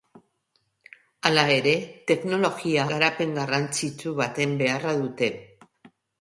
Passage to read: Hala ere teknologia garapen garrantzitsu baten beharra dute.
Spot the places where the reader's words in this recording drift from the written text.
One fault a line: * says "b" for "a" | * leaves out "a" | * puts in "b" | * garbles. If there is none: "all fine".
all fine